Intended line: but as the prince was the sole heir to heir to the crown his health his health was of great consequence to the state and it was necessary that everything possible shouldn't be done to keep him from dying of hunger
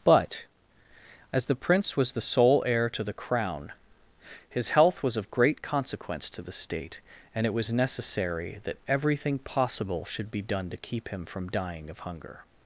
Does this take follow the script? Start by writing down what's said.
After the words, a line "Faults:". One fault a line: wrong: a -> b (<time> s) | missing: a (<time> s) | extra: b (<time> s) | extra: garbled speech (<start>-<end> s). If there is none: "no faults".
but as the prince was the sole heir to the crown his health was of great consequence to the state and it was necessary that everything possible should be done to keep him from dying of hunger
Faults:
missing: heir to (3.0 s)
missing: his health (5.0 s)
wrong: shouldn't -> should (10.1 s)